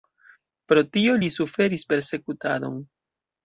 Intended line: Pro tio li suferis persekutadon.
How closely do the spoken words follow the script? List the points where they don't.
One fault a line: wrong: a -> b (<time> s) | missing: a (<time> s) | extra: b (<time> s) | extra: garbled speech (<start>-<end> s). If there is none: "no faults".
no faults